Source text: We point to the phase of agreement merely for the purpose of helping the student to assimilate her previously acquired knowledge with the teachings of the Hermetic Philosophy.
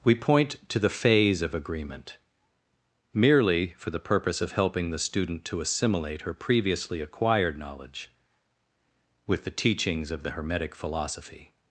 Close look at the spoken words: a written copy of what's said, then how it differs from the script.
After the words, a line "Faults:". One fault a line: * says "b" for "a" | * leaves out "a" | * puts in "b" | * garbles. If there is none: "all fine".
We point to the phase of agreement merely for the purpose of helping the student to assimilate her previously acquired knowledge with the teachings of the Hermetic Philosophy.
Faults:
all fine